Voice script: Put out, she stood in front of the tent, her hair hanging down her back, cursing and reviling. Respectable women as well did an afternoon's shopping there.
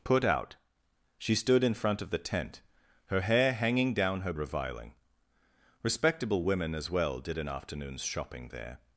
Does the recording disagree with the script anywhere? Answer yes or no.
yes